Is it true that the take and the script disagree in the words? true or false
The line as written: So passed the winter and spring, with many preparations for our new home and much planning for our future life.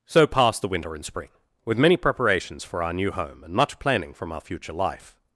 true